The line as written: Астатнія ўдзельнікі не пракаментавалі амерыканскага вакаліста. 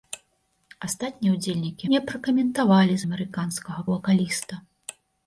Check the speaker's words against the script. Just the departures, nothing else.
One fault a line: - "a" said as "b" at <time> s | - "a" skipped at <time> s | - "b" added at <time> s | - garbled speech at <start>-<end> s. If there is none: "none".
none